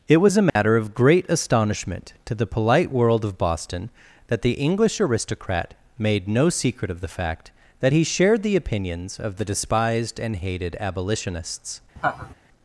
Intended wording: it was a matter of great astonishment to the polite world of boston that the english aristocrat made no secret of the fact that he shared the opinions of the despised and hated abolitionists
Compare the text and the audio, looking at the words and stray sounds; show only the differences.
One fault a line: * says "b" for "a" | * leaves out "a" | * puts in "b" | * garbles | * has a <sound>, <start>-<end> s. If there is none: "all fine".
* has a dropout, 0.5-0.6 s
* has a laugh, 12.0-12.3 s